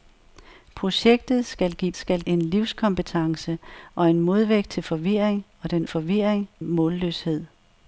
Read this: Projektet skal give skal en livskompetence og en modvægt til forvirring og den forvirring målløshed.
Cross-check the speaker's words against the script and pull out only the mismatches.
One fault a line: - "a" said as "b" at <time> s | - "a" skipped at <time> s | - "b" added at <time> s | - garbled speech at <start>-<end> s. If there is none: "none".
none